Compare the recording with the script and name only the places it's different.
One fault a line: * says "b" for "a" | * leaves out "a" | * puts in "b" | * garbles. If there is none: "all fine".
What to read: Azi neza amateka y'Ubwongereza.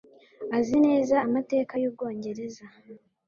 all fine